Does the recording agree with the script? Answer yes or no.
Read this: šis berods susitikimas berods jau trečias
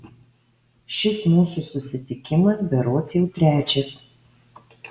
no